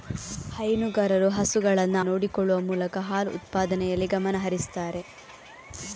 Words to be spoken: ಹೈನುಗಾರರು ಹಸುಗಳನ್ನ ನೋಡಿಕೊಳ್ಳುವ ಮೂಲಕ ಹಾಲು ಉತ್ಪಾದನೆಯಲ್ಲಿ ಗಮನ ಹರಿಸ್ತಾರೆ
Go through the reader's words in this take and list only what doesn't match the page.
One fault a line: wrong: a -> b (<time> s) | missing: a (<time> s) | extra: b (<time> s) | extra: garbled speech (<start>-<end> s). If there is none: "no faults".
no faults